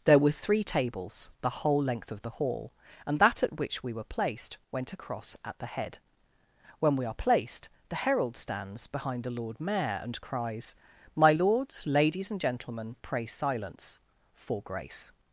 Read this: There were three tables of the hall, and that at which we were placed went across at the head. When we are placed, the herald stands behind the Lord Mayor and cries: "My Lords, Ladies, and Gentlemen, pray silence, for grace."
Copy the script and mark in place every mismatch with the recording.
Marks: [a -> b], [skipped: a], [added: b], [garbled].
There were three tables [added: the whole length] of the hall, and that at which we were placed went across at the head. When we are placed, the herald stands behind the Lord Mayor and cries: "My Lords, Ladies, and Gentlemen, pray silence, for grace."